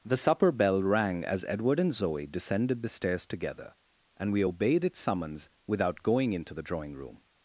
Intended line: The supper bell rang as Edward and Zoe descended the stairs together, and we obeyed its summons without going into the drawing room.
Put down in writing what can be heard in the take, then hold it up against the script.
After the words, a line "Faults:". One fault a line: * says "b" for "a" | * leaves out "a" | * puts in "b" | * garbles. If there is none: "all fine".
The supper bell rang as Edward and Zoe descended the stairs together, and we obeyed its summons without going into the drawing room.
Faults:
all fine